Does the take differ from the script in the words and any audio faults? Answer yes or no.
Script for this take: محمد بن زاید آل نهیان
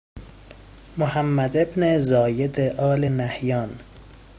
no